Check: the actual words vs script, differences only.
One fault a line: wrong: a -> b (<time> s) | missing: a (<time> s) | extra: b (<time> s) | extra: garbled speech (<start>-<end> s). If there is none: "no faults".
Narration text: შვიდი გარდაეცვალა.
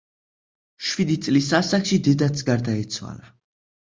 extra: წლის ასაკში დედაც (1.3 s)